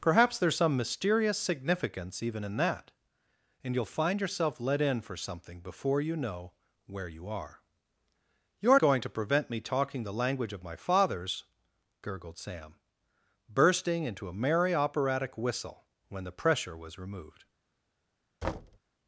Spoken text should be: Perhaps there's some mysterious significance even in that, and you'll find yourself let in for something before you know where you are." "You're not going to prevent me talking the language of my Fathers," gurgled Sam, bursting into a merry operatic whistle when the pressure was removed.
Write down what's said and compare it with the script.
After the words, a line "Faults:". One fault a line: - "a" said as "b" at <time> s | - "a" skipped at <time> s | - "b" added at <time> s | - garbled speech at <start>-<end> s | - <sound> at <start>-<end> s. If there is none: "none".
Perhaps there's some mysterious significance even in that, and you'll find yourself let in for something before you know where you are." "You're going to prevent me talking the language of my Fathers," gurgled Sam, bursting into a merry operatic whistle when the pressure was removed.
Faults:
- "not" skipped at 8.8 s
- thud at 18.4-18.8 s